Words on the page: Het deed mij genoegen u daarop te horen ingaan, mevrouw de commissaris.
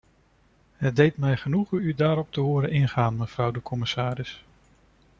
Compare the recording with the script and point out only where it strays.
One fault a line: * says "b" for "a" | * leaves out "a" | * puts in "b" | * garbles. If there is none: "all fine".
all fine